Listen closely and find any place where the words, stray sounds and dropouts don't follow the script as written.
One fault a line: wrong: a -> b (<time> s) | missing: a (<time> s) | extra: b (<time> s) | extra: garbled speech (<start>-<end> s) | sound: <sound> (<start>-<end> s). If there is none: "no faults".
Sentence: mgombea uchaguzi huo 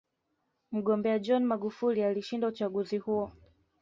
extra: john magufuli alishinda (1.2 s)